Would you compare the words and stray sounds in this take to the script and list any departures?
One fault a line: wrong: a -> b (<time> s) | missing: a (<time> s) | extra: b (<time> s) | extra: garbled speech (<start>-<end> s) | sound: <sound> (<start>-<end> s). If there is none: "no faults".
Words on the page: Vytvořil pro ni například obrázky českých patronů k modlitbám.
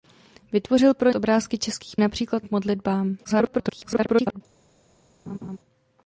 missing: ni například (1.1 s)
wrong: patronů -> například (2.0 s)
extra: garbled speech (3.2-4.4 s)
sound: laugh (5.3-5.6 s)